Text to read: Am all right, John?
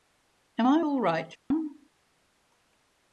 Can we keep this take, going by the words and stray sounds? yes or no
no